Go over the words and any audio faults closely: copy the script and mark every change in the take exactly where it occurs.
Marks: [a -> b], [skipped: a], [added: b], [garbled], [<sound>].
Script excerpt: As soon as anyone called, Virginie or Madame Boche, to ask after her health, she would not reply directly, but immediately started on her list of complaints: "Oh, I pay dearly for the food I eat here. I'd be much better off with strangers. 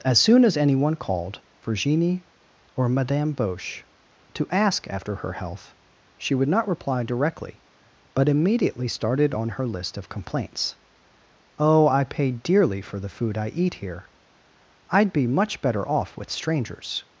As soon as anyone called, Virginie or Madame Boche, to ask after her health, she would not reply directly, but immediately started on her list of complaints: "Oh, I pay dearly for the food I eat here. I'd be much better off with strangers.